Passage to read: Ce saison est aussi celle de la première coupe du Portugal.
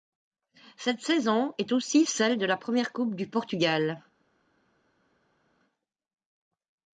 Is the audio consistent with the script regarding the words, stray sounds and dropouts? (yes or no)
no